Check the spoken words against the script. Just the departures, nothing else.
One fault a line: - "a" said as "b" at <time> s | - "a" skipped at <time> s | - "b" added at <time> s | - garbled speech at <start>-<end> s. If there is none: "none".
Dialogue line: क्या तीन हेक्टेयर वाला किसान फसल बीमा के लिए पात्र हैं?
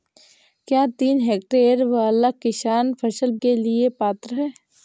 - "बीमा" skipped at 3.3 s